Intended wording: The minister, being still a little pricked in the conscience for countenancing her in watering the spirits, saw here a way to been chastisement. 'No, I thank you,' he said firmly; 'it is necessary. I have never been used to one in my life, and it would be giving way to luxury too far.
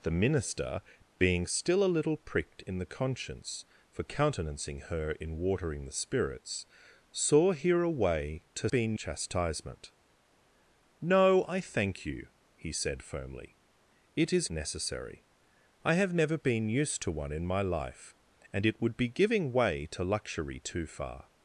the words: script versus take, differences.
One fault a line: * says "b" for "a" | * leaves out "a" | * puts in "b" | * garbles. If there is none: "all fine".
all fine